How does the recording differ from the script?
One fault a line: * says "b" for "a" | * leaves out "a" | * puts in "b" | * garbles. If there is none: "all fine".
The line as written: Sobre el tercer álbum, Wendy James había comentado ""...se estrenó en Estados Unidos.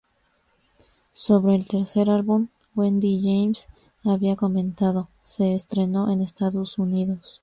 all fine